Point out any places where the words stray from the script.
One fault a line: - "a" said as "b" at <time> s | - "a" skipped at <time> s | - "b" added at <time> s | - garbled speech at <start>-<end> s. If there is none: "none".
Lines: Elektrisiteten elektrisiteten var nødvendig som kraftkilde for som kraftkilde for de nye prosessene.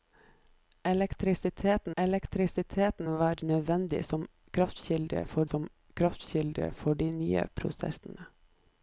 none